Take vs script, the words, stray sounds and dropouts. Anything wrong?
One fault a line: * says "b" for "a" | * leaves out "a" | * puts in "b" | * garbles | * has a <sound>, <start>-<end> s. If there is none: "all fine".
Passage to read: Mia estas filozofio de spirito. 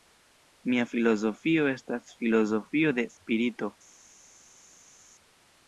* puts in "filozofio"